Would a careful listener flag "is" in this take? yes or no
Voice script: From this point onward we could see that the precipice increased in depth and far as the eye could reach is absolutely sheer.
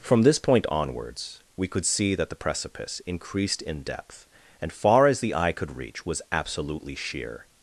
yes